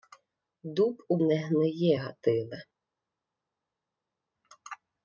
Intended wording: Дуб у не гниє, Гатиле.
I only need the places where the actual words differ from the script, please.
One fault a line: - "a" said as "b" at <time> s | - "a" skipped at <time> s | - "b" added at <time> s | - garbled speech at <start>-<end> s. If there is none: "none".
none